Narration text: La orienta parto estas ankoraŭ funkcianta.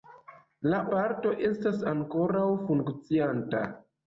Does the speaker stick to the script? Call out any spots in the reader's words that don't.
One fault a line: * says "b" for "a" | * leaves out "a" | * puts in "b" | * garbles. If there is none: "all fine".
* leaves out "orienta"